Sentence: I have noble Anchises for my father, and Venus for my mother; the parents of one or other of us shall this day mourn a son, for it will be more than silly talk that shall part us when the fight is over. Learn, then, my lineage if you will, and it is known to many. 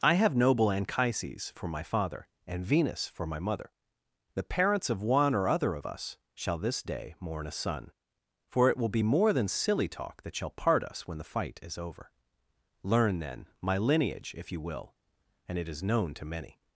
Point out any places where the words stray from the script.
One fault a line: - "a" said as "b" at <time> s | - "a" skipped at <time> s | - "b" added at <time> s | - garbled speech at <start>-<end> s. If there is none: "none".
none